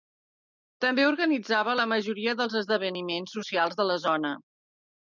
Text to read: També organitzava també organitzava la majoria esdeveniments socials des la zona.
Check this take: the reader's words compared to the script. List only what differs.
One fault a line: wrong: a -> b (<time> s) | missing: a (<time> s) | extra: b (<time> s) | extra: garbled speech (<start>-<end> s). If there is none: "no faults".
missing: també organitzava (1.8 s)
extra: dels (2.4 s)
wrong: des -> de (3.8 s)